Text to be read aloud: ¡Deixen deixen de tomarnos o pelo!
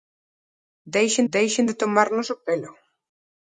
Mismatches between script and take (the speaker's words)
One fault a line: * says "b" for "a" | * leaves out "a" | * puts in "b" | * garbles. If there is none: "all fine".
all fine